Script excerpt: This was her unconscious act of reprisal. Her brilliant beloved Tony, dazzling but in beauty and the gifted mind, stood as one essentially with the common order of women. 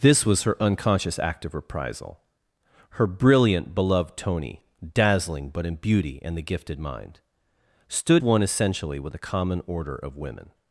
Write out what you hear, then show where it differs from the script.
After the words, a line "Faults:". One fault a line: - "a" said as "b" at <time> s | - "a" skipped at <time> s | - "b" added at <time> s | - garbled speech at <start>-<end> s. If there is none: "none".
This was her unconscious act of reprisal. Her brilliant beloved Tony, dazzling but in beauty and the gifted mind, stood one essentially with the common order of women.
Faults:
- "as" skipped at 8.2 s